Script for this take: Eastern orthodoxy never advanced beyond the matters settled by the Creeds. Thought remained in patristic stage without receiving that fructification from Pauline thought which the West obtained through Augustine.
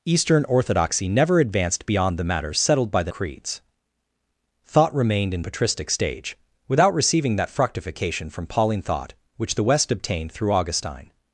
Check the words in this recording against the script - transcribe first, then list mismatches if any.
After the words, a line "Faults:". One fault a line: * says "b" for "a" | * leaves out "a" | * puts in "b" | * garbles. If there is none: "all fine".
Eastern orthodoxy never advanced beyond the matters settled by the Creeds. Thought remained in patristic stage without receiving that fructification from Pauline thought which the West obtained through Augustine.
Faults:
all fine